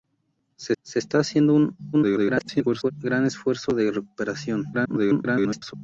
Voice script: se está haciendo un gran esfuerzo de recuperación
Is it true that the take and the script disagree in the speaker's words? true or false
true